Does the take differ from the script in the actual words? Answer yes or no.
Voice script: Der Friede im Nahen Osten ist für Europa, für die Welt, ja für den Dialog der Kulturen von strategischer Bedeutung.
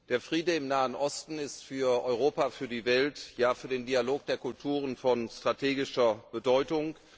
no